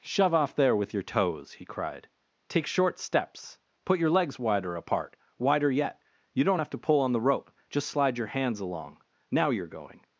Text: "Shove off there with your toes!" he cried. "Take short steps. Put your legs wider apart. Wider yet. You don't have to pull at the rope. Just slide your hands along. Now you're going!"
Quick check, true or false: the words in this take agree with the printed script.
false